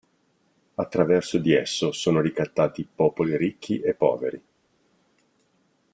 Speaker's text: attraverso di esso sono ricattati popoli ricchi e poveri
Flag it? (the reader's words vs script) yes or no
no